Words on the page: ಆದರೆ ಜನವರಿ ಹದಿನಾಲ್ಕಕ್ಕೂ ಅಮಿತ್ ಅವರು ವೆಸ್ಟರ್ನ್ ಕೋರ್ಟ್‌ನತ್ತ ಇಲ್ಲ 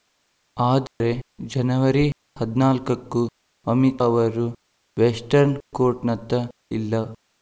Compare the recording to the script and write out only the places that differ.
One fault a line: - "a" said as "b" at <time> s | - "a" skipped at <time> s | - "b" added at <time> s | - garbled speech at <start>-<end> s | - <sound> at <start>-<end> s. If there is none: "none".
- dropout at 0.9-1.0 s